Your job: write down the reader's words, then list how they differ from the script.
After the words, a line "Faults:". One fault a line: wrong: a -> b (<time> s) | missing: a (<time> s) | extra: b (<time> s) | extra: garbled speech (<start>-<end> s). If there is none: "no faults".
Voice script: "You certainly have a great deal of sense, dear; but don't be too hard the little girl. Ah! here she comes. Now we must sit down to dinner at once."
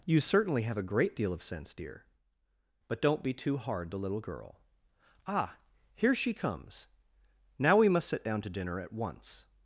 "You certainly have a great deal of sense, dear; but don't be too hard the little girl. Ah! here she comes. Now we must sit down to dinner at once."
Faults:
no faults